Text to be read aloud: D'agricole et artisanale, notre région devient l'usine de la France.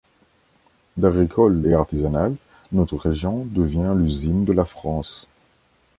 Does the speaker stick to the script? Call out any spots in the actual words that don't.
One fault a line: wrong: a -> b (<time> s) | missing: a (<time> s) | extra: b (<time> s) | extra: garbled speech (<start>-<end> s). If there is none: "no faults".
no faults